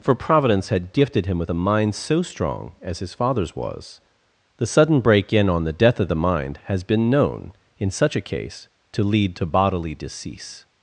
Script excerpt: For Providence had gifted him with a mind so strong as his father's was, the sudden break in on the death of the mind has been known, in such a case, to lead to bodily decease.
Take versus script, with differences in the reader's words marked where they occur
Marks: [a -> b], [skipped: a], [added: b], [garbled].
For Providence had gifted him with a mind so strong as his father's was, the sudden break in on the death of the mind has been known, in such a case, to lead to bodily decease.